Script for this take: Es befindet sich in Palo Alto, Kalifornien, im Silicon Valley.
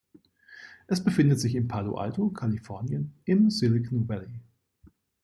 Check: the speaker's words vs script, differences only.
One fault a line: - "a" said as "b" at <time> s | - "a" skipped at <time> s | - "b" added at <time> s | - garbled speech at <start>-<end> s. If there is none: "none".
none